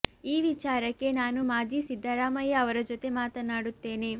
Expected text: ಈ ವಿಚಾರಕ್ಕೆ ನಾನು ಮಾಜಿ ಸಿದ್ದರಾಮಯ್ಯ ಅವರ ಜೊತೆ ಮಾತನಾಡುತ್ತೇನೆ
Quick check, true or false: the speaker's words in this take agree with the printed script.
true